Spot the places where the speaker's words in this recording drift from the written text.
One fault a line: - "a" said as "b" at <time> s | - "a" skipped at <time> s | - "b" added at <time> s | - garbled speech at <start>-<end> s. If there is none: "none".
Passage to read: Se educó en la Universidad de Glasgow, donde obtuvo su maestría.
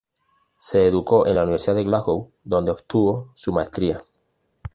none